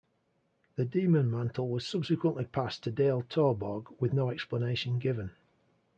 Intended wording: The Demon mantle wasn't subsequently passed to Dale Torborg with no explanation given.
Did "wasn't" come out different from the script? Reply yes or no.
yes